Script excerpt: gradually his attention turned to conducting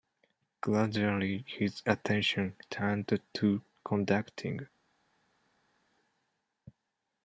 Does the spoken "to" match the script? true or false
true